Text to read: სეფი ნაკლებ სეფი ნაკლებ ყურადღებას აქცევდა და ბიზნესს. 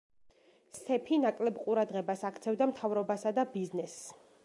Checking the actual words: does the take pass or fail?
fail